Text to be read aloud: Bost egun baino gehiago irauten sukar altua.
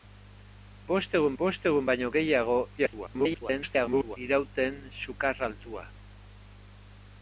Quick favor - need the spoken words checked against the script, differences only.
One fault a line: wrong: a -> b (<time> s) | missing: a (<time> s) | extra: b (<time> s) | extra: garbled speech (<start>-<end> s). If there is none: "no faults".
extra: bost egun (1.4 s)
extra: garbled speech (2.8-4.2 s)